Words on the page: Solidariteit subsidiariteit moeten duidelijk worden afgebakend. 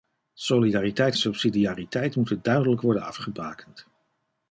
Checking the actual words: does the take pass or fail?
pass